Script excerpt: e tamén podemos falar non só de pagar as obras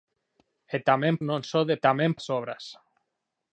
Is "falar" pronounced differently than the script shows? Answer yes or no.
yes